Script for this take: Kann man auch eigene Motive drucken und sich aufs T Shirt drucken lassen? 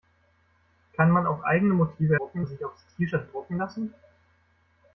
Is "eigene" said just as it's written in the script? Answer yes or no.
yes